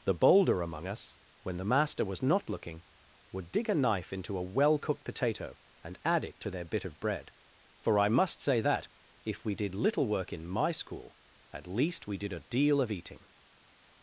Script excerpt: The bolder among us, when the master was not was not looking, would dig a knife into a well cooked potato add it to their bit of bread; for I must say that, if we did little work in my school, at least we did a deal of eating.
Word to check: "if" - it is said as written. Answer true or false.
true